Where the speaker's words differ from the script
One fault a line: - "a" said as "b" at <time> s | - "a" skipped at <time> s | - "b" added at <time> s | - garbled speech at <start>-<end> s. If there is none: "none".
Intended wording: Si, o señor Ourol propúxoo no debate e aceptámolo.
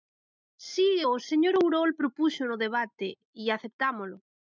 none